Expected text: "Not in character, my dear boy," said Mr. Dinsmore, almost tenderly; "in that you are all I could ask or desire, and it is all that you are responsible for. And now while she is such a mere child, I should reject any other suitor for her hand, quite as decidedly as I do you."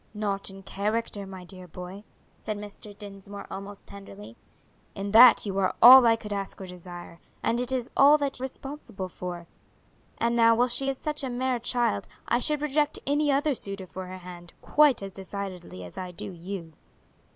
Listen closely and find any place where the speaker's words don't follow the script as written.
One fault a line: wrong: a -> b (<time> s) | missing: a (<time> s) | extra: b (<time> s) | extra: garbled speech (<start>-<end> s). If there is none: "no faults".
missing: you are (8.4 s)